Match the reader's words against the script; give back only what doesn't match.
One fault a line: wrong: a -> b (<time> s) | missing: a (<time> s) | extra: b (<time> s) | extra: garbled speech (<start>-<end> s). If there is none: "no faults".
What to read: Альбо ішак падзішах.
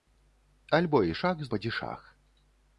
no faults